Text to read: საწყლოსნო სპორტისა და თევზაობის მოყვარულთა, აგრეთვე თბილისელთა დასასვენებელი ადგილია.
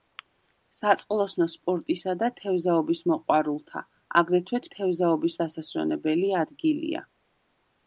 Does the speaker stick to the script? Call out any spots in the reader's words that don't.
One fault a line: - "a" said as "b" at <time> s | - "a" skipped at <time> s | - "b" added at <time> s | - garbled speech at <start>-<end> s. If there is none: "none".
- "თბილისელთა" said as "თევზაობის" at 4.8 s